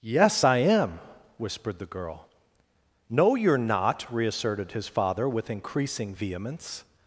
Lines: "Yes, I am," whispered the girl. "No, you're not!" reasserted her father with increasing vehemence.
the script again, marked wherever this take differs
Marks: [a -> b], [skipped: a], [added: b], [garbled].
"Yes, I am," whispered the girl. "No, you're not!" reasserted [her -> his] father with increasing vehemence.